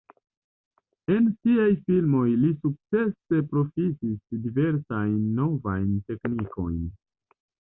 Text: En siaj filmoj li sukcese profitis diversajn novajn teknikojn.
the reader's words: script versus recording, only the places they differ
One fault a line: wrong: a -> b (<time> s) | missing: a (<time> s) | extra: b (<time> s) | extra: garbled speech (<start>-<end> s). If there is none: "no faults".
no faults